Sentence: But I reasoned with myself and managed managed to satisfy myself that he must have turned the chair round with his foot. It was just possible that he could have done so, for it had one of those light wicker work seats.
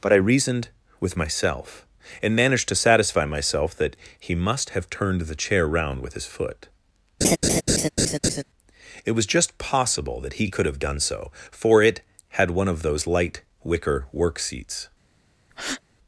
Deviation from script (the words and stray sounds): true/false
true